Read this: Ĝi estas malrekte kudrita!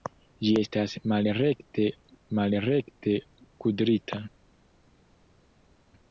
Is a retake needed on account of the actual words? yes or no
yes